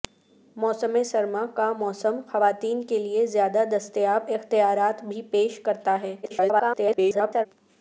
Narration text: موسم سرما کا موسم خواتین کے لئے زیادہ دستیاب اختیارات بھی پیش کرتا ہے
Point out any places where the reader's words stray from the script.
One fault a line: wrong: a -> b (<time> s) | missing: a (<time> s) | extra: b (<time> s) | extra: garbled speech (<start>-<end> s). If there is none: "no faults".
extra: garbled speech (6.2-7.5 s)